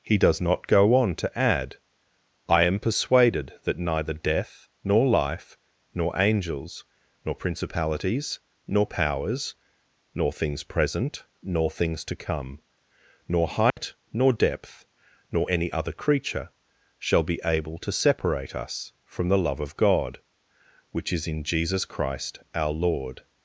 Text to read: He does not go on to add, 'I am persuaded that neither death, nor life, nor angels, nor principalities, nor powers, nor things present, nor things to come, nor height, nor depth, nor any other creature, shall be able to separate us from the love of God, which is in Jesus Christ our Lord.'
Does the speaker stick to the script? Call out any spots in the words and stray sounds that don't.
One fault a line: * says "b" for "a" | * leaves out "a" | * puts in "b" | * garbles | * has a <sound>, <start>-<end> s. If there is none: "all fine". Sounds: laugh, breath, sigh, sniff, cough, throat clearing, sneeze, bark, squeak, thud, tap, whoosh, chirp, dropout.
* has a dropout, 13.7-13.8 s